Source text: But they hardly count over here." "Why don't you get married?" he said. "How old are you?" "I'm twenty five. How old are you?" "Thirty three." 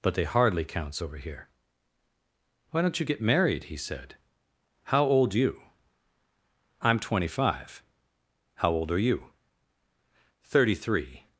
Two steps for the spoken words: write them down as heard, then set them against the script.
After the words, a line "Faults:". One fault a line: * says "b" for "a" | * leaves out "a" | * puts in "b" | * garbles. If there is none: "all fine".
But they hardly counts over here." "Why don't you get married?" he said. "How old you?" "I'm twenty five. How old are you?" "Thirty three."
Faults:
* says "counts" for "count"
* leaves out "are"